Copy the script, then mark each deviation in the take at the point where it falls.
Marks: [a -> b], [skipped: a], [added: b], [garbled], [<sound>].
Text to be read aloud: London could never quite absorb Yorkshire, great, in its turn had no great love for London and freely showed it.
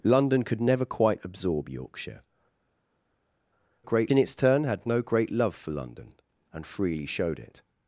London could never quite absorb Yorkshire, great, in its turn had no great love for London and freely showed it.